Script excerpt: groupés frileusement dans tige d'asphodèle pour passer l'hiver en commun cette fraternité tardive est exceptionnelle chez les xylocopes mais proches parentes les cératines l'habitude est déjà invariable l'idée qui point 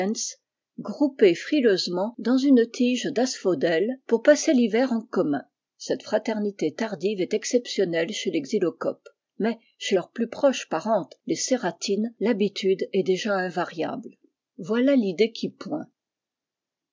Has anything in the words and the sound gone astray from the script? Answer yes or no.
yes